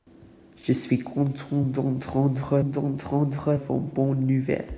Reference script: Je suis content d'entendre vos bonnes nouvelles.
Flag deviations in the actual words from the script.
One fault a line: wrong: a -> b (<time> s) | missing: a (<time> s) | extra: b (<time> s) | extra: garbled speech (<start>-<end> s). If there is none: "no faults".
extra: d'entendre (2.6 s)